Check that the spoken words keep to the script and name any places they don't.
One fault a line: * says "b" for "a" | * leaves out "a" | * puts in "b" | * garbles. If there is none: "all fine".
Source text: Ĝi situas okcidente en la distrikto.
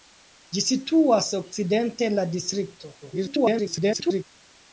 * garbles